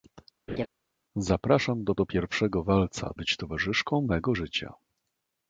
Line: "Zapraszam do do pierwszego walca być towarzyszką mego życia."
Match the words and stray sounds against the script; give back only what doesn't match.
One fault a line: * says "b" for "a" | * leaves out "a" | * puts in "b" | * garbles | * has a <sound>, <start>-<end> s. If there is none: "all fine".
* has a laugh, 0.5-0.7 s